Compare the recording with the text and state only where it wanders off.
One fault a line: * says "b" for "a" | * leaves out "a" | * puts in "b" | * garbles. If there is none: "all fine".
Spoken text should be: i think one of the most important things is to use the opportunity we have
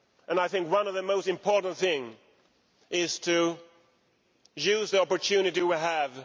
all fine